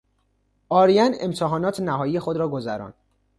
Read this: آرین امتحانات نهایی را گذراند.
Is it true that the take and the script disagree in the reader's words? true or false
true